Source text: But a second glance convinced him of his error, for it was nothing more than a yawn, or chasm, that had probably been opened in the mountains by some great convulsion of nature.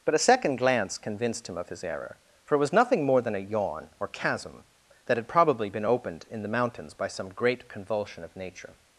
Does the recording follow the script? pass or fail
pass